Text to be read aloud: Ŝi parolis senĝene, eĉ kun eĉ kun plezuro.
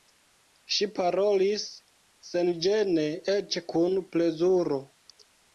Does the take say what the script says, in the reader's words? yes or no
no